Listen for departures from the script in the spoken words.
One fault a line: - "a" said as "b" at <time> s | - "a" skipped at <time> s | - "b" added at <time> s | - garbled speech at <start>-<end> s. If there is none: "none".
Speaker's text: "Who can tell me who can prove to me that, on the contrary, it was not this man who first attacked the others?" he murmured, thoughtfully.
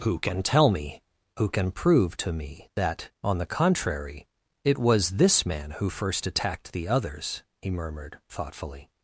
- "not" skipped at 5.1 s